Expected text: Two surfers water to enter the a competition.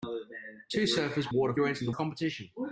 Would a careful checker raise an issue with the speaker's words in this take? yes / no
no